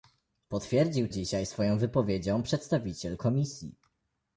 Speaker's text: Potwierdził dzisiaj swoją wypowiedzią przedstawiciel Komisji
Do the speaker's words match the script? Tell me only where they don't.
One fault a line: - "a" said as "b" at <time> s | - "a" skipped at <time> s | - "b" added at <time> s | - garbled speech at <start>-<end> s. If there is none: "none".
none